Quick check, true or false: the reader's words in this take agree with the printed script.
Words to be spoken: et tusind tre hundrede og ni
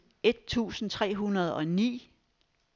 true